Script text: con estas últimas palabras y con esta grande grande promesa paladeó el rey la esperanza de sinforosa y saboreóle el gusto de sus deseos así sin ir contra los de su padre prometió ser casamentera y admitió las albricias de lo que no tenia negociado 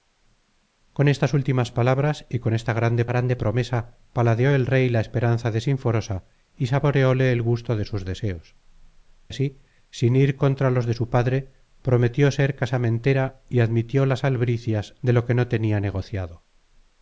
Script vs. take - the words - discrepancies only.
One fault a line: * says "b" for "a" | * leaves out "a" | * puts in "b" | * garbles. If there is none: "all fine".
all fine